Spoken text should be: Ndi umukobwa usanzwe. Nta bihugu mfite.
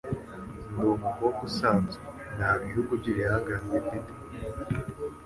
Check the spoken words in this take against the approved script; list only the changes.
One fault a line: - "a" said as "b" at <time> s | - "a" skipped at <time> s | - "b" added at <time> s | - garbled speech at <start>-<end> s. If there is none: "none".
- "by'ibihangange" added at 3.0 s